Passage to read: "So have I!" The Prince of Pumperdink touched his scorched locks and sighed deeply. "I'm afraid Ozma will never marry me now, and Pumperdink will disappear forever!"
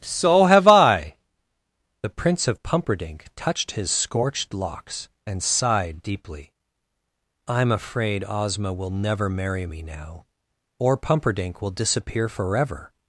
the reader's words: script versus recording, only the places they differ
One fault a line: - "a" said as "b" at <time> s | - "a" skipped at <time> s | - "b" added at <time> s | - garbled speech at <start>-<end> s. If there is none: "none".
- "and" said as "or" at 10.8 s